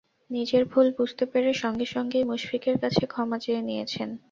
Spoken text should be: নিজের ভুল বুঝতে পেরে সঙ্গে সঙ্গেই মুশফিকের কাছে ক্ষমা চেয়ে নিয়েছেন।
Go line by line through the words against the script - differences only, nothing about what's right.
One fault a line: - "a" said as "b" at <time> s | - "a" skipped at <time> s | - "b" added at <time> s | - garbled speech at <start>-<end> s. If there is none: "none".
none